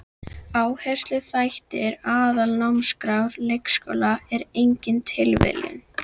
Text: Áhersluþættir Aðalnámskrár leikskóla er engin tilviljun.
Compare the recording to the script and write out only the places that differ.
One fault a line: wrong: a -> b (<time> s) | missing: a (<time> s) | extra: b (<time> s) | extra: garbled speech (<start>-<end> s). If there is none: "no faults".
no faults